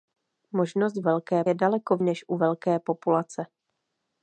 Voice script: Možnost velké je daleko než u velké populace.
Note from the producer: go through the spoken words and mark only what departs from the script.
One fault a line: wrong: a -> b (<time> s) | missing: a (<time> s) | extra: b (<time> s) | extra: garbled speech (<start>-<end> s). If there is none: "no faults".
no faults